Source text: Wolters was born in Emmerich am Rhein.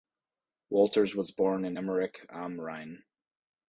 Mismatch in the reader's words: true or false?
false